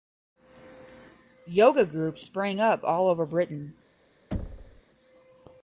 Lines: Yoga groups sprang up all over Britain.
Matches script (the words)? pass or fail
pass